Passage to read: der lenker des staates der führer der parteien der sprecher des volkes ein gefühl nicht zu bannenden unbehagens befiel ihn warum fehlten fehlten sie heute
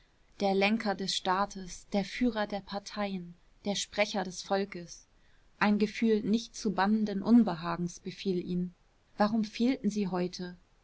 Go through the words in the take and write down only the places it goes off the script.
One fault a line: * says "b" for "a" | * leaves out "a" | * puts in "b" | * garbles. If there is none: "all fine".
* leaves out "fehlten"